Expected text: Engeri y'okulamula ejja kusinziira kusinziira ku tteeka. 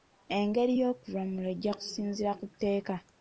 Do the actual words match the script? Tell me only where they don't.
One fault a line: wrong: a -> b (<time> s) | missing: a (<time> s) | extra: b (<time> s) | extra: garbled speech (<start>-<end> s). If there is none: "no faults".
missing: kusinziira (2.3 s)